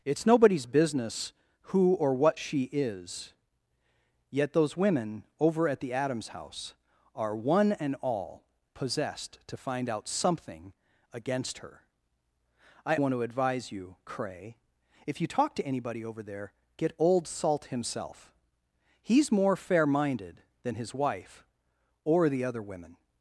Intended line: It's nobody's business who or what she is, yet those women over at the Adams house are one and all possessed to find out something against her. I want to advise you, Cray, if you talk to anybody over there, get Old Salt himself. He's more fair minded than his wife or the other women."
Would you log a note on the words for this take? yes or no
no